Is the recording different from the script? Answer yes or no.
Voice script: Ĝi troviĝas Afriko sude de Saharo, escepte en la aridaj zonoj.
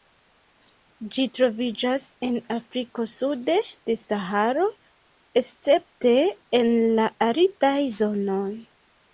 yes